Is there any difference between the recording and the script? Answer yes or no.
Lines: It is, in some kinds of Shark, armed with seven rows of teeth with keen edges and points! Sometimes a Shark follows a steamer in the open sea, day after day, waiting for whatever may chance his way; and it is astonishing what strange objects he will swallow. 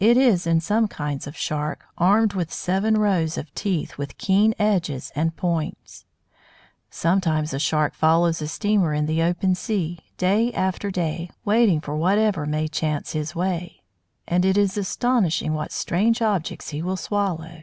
no